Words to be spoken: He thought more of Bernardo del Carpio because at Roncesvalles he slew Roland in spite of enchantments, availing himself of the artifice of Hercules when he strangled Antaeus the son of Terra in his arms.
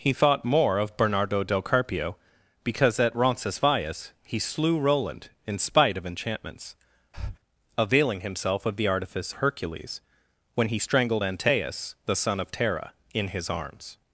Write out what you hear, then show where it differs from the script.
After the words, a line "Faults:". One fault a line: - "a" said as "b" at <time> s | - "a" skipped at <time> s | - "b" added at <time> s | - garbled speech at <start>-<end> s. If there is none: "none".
He thought more of Bernardo del Carpio because at Roncesvalles he slew Roland in spite of enchantments, availing himself of the artifice Hercules when he strangled Antaeus the son of Terra in his arms.
Faults:
- "of" skipped at 9.3 s